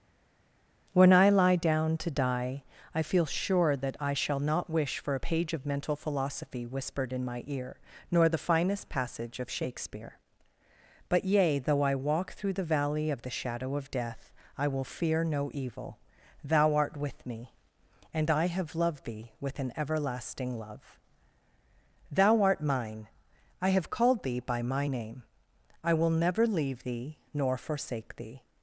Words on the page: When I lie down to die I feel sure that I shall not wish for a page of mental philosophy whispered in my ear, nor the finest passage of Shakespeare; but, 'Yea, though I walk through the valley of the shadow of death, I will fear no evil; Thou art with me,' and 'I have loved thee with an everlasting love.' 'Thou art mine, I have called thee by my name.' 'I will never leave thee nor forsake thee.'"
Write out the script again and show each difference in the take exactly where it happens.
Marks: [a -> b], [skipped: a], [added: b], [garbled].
When I lie down to die I feel sure that I shall not wish for a page of mental philosophy whispered in my ear, nor the finest passage of Shakespeare; but, 'Yea, though I walk through the valley of the shadow of death, I will fear no evil; Thou art with me,' and 'I have loved thee with an everlasting love.' 'Thou art mine, I have called thee by my name.' 'I will never leave thee nor forsake thee.'"